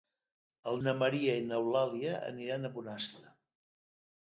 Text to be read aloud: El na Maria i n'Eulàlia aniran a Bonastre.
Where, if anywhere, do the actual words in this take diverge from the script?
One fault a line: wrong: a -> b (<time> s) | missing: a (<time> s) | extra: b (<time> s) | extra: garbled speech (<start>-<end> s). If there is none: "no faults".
no faults